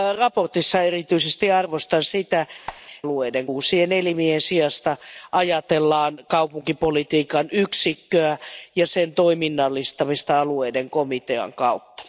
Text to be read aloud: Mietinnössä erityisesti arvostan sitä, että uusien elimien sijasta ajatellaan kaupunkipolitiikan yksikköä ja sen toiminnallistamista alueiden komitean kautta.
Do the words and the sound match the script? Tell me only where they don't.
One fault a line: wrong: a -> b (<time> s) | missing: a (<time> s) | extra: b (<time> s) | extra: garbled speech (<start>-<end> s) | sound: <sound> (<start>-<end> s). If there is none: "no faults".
sound: squeak (2.7-2.8 s)
wrong: että -> alueiden (3.0 s)